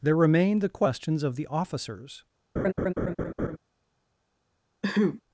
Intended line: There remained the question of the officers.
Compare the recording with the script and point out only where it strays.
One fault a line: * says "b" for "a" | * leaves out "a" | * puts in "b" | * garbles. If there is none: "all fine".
* says "questions" for "question"